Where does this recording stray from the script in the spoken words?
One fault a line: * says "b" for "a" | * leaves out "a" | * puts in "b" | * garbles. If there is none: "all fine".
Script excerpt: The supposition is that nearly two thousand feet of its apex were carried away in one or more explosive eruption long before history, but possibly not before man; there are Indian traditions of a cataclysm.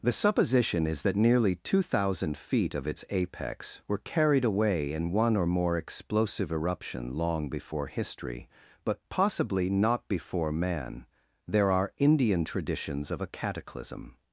all fine